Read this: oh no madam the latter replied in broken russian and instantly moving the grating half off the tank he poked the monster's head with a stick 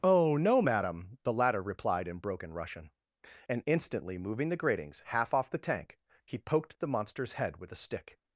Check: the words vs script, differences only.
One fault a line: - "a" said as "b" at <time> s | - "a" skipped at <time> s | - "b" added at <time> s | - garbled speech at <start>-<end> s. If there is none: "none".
- "grating" said as "gratings" at 4.6 s